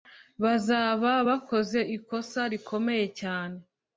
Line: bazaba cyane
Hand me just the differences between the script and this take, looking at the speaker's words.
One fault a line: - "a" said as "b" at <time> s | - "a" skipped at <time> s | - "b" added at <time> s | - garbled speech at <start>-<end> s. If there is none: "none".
- "bakoze ikosa rikomeye" added at 1.3 s